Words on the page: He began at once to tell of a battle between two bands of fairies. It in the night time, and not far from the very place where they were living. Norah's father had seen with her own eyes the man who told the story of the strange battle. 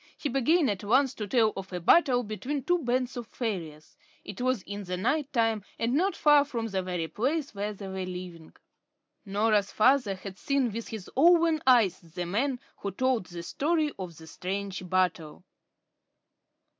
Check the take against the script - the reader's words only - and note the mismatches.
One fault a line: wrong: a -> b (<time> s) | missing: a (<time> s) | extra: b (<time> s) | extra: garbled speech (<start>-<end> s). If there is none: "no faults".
extra: was (4.4 s)
wrong: her -> his (10.9 s)